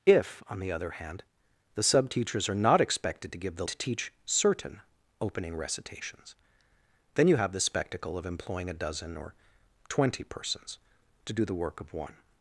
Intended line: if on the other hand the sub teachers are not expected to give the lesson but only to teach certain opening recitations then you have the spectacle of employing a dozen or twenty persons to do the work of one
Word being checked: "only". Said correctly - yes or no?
no